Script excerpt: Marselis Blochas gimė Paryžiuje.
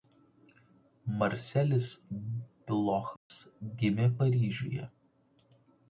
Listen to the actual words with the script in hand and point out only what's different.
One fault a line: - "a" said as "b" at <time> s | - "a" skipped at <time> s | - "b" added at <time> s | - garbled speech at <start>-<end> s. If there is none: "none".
none